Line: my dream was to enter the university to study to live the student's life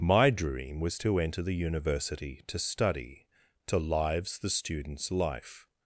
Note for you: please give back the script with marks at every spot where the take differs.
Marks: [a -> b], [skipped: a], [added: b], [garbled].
my dream was to enter the university to study to [live -> lives] the student's life